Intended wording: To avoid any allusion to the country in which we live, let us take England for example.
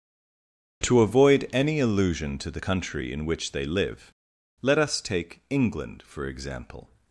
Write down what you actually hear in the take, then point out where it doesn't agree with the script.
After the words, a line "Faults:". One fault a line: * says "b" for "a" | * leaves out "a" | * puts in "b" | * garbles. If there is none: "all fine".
To avoid any allusion to the country in which they live, let us take England for example.
Faults:
* says "they" for "we"